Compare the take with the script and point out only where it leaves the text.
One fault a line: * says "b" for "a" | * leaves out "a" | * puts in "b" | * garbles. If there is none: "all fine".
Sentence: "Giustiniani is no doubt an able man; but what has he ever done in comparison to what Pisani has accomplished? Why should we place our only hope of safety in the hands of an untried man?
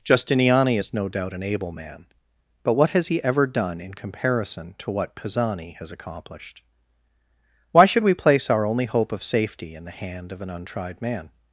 * says "hand" for "hands"